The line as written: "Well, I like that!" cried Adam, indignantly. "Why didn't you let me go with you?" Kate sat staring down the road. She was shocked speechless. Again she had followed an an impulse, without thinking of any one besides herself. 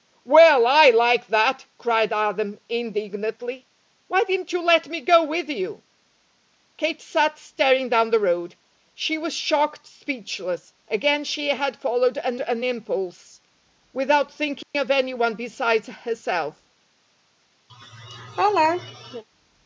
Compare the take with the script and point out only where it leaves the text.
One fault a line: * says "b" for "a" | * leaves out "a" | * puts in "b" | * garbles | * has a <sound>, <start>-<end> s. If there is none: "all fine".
* has a dropout, 14.6-14.7 s
* has a laugh, 17.7-19.2 s